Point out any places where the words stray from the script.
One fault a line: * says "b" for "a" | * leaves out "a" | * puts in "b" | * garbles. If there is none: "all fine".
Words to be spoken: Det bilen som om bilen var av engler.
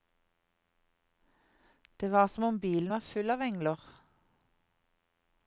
* says "var" for "bilen"
* puts in "full"